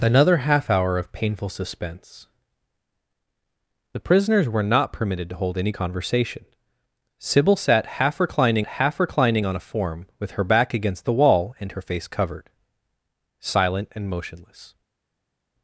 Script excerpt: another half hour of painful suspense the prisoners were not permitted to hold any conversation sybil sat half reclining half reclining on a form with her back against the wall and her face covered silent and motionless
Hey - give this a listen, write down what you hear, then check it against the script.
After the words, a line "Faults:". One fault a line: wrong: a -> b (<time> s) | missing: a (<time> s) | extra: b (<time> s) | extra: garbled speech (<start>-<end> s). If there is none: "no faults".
another half hour of painful suspense the prisoners were not permitted to hold any conversation sybil sat half reclining half reclining on a form with her back against the wall and her face covered silent and motionless
Faults:
no faults